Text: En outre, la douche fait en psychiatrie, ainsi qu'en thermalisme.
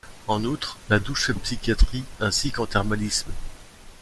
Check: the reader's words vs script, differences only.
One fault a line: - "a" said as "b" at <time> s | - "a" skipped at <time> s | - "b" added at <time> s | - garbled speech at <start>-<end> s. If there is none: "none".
none